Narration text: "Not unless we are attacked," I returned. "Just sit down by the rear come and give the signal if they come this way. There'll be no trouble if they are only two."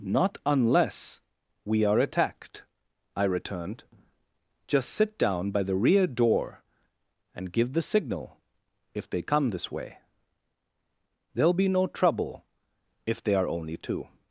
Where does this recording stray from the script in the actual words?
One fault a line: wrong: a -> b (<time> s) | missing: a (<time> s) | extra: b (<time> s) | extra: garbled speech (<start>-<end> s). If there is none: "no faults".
wrong: come -> door (6.1 s)